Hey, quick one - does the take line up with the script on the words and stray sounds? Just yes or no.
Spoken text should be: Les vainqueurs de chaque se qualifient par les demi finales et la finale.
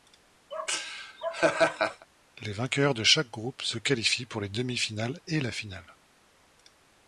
no